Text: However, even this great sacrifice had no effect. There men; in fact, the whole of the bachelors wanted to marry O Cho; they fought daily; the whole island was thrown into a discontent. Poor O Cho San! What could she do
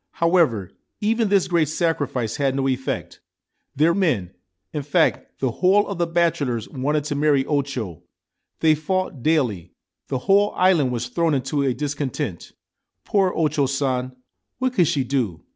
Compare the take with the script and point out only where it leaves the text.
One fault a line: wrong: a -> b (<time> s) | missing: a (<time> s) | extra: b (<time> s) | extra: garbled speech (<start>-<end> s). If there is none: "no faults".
no faults